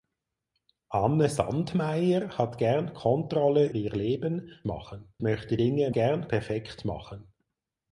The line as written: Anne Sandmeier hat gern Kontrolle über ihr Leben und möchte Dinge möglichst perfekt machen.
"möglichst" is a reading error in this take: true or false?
true